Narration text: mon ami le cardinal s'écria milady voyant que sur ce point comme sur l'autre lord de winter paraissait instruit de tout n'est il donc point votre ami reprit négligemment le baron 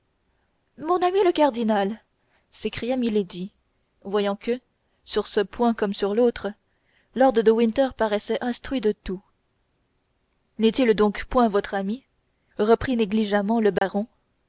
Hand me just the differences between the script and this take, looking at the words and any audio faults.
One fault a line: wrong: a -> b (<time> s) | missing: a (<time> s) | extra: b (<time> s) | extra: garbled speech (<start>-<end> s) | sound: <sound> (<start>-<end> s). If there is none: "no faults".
sound: dropout (13.8-13.8 s)